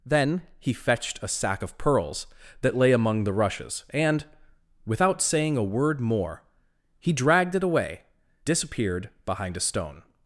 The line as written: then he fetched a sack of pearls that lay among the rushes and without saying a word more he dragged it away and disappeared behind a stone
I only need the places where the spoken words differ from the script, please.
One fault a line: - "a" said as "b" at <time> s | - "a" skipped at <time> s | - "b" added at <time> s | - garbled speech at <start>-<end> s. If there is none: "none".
- "and" skipped at 8.0 s